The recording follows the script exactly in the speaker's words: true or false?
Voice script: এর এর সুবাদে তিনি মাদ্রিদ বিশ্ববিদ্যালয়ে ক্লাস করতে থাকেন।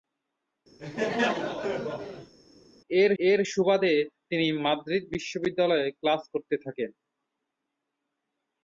true